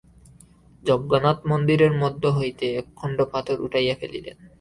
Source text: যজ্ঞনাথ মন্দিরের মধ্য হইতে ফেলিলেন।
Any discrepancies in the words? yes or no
yes